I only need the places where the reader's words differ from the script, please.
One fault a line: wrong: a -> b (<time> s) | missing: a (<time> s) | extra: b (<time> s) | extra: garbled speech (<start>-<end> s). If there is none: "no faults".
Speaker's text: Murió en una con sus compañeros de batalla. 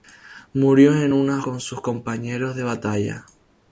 no faults